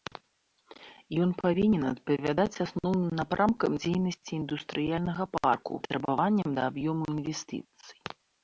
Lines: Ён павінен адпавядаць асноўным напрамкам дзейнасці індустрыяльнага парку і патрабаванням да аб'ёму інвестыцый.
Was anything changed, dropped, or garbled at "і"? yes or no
yes